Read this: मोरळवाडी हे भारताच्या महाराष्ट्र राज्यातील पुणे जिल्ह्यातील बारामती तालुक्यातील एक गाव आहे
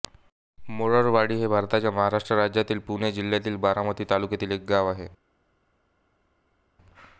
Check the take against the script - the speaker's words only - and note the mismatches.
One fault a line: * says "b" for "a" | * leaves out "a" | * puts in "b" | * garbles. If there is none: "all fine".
all fine